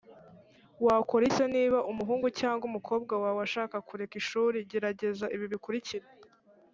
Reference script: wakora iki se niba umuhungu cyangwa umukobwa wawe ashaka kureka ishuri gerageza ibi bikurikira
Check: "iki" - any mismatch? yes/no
yes